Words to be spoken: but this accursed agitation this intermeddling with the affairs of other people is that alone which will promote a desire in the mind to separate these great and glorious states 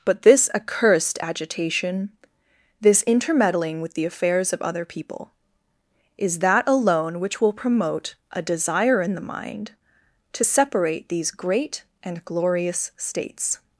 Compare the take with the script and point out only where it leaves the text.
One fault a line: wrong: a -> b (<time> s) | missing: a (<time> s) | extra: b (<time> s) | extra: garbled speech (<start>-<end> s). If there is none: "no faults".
no faults